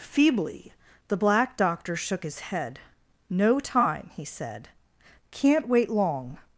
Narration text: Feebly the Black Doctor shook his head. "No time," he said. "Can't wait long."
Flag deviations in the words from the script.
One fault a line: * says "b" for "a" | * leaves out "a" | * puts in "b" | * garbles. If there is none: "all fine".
all fine